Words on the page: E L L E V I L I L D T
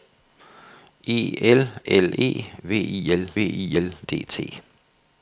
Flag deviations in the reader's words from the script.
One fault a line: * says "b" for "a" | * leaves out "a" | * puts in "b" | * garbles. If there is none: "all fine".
all fine